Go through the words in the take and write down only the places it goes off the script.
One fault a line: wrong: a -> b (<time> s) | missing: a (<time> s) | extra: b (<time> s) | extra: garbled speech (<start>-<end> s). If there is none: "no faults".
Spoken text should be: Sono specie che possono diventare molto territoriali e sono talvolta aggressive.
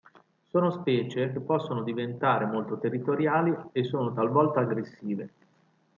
no faults